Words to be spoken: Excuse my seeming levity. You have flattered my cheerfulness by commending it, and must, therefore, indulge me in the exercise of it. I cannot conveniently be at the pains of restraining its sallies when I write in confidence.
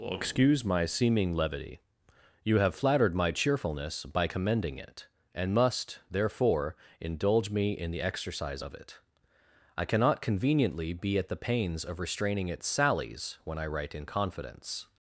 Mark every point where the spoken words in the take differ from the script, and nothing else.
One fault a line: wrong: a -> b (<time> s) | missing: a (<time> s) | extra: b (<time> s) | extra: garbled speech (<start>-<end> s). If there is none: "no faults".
no faults